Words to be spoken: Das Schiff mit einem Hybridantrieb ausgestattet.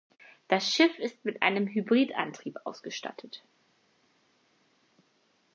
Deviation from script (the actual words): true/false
true